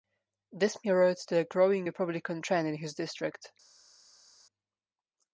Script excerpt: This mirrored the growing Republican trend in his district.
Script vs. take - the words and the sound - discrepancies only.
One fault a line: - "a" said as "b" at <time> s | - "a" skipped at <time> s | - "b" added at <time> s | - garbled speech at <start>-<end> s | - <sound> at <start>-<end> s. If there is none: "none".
none